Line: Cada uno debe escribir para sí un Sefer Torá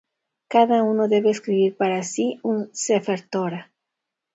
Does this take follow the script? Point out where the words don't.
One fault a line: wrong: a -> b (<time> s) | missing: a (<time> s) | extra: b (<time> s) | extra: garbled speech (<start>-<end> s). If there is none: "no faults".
no faults